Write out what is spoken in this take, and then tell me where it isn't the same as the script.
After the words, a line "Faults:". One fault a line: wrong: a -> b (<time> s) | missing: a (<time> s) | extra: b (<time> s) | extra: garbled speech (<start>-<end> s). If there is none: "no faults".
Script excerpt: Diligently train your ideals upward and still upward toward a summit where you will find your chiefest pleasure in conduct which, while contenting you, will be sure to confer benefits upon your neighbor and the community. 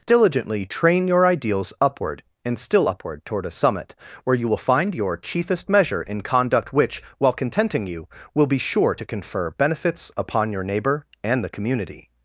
Diligently train your ideals upward and still upward toward a summit where you will find your chiefest measure in conduct which, while contenting you, will be sure to confer benefits upon your neighbor and the community.
Faults:
wrong: pleasure -> measure (5.7 s)